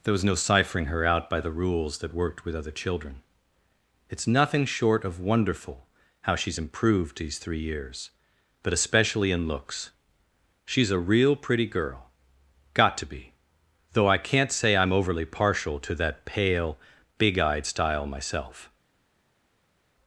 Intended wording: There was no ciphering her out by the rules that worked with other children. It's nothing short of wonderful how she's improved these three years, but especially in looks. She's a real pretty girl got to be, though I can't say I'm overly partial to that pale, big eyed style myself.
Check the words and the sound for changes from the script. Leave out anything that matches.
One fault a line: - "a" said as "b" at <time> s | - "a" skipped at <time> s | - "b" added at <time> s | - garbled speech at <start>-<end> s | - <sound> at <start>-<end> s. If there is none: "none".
none